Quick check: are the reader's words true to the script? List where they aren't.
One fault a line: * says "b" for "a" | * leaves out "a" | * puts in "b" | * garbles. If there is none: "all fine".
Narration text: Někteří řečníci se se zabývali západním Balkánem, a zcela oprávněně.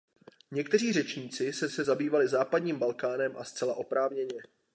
all fine